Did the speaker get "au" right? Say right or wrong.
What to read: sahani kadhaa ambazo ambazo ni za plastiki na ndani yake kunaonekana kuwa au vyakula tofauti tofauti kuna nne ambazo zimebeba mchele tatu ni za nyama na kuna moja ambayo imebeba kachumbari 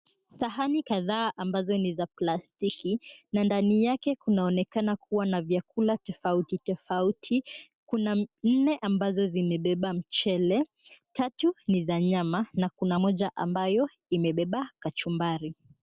wrong